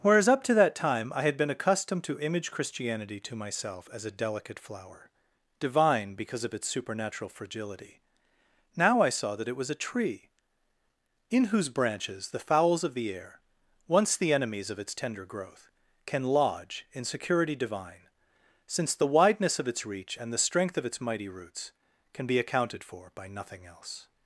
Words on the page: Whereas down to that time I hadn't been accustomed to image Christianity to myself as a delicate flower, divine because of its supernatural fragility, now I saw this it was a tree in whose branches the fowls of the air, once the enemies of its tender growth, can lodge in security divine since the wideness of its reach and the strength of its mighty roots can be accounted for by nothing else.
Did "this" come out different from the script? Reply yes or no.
yes